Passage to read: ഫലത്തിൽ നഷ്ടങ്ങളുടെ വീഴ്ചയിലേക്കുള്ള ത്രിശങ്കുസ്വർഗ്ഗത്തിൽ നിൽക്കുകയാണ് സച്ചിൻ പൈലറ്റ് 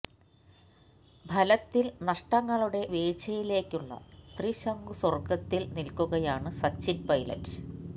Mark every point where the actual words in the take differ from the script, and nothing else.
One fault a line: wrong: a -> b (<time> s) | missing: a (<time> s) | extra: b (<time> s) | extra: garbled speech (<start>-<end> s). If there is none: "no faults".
no faults